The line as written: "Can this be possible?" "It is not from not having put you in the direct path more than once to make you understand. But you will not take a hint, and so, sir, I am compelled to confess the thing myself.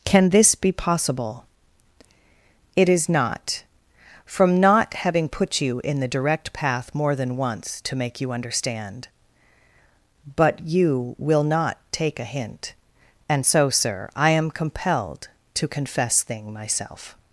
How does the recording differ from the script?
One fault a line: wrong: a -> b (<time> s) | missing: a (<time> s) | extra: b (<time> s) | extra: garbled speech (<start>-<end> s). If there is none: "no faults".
missing: the (16.2 s)